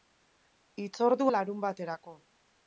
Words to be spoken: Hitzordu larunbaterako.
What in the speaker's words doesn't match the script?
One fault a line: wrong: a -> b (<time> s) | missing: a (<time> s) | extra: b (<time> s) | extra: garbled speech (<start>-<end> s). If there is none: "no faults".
no faults